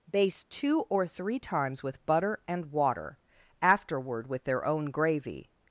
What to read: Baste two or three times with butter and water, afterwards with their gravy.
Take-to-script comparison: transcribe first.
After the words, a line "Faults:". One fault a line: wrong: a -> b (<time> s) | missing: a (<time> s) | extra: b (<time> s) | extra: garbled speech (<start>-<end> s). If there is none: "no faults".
Baste two or three times with butter and water, afterward with their own gravy.
Faults:
wrong: afterwards -> afterward (3.6 s)
extra: own (4.7 s)